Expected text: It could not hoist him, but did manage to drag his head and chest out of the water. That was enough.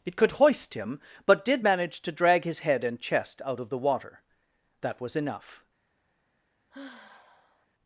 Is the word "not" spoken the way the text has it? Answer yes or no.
no